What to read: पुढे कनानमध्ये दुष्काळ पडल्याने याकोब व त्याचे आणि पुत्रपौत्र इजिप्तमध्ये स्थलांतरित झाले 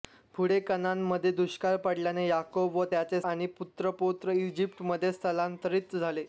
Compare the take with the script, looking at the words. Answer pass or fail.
pass